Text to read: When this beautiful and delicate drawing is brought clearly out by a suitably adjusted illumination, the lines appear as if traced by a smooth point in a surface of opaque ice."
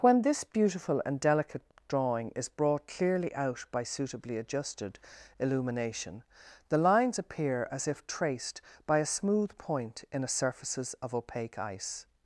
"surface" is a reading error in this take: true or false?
true